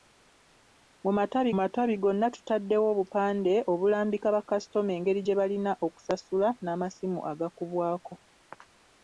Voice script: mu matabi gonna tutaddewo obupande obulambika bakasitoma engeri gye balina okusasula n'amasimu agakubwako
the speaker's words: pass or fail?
fail